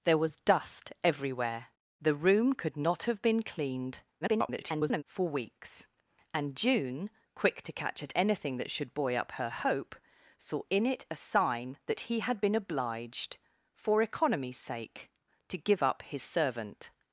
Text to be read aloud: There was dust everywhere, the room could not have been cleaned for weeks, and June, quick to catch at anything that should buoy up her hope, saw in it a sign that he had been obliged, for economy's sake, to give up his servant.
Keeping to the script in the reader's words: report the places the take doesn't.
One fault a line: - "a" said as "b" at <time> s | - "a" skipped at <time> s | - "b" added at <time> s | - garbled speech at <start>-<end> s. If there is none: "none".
- garbled speech at 4.2-5.0 s